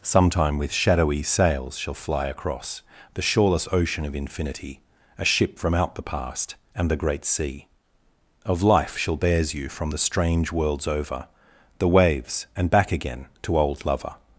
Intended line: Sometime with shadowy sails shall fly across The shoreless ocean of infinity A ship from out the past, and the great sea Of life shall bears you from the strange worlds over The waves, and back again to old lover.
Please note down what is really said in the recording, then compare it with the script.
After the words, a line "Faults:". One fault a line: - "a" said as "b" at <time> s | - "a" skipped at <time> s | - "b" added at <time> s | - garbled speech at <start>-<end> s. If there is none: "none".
Sometime with shadowy sails shall fly across The shoreless ocean of infinity A ship from out the past, and the great sea Of life shall bears you from the strange worlds over The waves, and back again to old lover.
Faults:
none